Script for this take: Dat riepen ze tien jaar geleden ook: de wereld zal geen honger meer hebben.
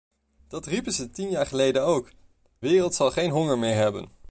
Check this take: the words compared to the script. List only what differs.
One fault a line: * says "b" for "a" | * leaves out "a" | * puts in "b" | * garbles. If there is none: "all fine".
* leaves out "de"